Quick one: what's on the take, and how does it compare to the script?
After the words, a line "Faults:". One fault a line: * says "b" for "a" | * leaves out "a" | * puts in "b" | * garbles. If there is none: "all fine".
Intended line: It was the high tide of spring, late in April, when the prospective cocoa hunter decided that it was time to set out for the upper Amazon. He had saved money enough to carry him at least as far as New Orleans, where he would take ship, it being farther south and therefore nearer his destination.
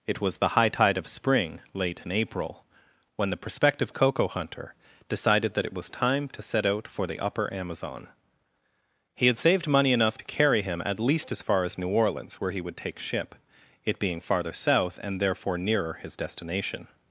It was the high tide of spring, late in April, when the prospective cocoa hunter decided that it was time to set out for the upper Amazon. He had saved money enough to carry him at least as far as New Orleans, where he would take ship, it being farther south and therefore nearer his destination.
Faults:
all fine